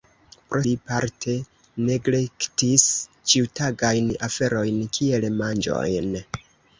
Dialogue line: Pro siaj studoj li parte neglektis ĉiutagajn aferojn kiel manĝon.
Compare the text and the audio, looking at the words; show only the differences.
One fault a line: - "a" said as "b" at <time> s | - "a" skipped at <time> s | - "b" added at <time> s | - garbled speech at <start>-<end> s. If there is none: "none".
- "siaj studoj" skipped at 0.6 s